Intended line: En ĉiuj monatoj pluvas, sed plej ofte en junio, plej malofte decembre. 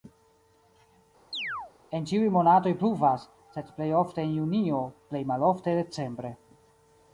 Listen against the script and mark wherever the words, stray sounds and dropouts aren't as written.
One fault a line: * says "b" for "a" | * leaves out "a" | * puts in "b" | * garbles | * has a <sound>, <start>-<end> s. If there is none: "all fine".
* has a chirp, 1.3-1.7 s